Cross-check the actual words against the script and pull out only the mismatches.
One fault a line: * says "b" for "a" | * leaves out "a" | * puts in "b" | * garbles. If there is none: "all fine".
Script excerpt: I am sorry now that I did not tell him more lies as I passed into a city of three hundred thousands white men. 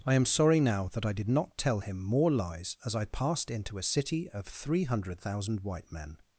* says "thousand" for "thousands"